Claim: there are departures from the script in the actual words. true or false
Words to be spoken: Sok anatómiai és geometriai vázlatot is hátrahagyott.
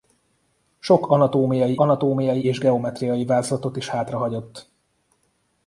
true